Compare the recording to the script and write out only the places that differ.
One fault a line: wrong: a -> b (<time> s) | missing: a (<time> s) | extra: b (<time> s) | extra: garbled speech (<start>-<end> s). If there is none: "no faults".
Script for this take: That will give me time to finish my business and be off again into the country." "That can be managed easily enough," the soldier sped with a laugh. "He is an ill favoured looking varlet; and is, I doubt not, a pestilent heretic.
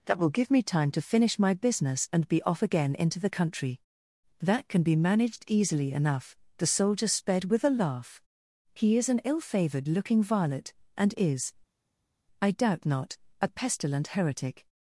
no faults